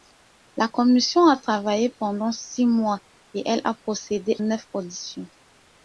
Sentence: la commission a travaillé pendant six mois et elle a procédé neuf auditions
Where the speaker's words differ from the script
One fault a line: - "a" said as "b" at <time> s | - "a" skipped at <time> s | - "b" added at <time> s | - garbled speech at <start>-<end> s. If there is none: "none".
none